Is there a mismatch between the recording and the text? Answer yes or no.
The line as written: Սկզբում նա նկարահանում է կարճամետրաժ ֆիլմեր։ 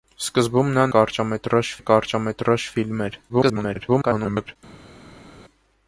yes